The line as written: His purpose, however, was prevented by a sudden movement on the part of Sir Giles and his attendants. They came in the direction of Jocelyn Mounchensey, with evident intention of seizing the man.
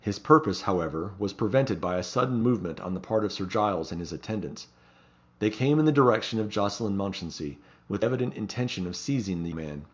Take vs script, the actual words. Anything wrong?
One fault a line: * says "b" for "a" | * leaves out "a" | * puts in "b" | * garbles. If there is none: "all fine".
all fine